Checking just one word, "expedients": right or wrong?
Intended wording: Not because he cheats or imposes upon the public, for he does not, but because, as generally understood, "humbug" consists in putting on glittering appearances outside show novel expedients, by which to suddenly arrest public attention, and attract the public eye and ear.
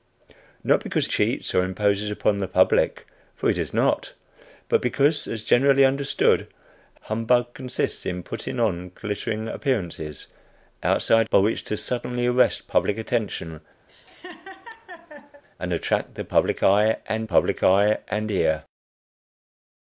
wrong